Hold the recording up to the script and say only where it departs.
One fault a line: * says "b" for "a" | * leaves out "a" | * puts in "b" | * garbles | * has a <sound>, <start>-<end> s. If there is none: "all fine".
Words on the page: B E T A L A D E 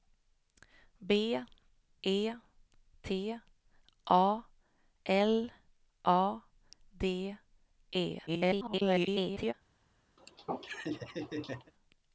* garbles
* has a laugh, 10.2-11.7 s